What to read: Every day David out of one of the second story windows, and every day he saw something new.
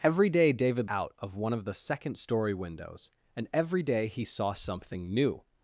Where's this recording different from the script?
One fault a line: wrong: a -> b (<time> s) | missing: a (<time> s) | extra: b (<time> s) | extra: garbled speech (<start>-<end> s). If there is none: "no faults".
no faults